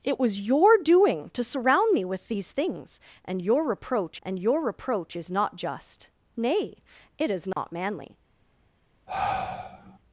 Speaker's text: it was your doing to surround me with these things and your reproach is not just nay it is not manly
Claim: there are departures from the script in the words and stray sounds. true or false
true